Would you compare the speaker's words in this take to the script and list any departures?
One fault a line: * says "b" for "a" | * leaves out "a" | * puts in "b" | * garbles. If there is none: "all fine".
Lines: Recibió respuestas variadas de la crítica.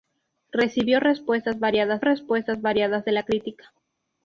* puts in "respuestas variadas"